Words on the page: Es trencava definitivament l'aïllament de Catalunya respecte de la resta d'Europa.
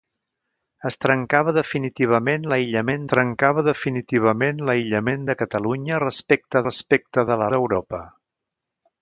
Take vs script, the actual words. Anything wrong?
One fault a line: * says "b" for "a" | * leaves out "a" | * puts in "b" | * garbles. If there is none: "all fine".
* puts in "trencava definitivament l'aïllament"
* puts in "respecte"
* leaves out "resta"